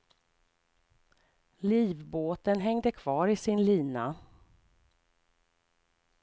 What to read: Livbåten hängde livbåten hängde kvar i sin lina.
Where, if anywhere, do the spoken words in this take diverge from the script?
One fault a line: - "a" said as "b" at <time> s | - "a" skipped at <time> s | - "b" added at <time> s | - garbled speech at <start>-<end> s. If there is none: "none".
- "livbåten hängde" skipped at 2.9 s